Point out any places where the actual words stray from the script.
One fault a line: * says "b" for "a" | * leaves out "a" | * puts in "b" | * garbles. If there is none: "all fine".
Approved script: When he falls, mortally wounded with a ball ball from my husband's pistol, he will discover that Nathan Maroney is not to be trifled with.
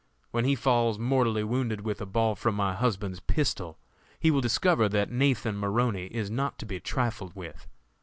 * leaves out "ball"